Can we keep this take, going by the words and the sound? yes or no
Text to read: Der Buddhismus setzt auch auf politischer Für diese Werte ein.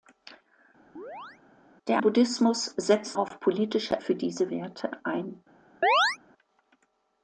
no